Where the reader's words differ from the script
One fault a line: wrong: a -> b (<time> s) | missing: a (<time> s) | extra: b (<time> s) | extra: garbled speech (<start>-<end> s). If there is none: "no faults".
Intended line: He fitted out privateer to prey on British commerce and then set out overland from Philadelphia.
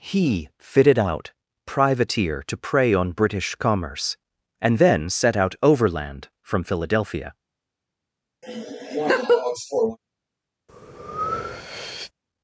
no faults